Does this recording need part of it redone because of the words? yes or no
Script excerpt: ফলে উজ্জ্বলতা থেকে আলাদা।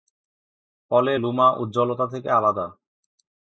yes